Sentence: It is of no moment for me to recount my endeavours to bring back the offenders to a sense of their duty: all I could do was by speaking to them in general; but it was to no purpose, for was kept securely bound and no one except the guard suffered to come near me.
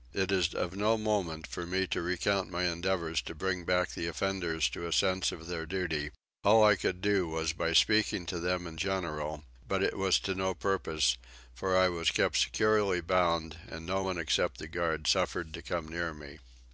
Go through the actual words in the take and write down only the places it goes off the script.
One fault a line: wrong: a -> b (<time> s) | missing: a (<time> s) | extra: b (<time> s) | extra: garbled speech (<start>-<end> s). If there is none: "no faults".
extra: I (11.8 s)